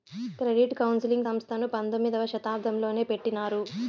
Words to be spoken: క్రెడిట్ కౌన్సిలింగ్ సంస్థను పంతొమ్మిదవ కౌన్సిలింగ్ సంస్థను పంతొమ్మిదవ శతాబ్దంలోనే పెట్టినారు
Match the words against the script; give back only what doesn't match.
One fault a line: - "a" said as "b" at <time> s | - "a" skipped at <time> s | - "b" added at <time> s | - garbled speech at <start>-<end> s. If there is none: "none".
- "కౌన్సిలింగ్ సంస్థను పంతొమ్మిదవ" skipped at 2.2 s